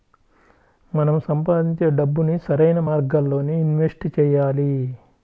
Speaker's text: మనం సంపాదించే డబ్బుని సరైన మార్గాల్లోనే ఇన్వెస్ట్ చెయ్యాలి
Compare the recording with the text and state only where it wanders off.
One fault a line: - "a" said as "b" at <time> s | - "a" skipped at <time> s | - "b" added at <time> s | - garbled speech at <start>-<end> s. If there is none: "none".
none